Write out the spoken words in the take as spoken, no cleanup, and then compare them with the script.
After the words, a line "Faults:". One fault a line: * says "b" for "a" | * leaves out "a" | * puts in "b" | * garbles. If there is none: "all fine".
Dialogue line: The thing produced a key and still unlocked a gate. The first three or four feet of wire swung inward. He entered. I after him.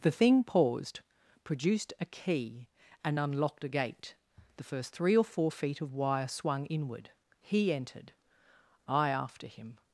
The thing paused, produced a key and unlocked a gate. The first three or four feet of wire swung inward. He entered. I after him.
Faults:
* puts in "paused"
* leaves out "still"